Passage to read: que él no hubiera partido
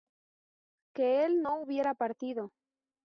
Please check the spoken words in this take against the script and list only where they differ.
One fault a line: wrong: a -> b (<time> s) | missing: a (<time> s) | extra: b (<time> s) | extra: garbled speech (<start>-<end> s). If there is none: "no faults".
no faults